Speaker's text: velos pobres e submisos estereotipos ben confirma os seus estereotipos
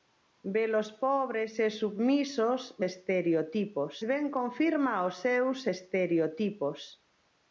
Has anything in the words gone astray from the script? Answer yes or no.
no